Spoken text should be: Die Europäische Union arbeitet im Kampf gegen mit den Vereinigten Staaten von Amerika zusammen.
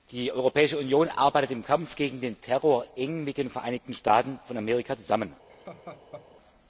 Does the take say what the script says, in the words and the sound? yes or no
no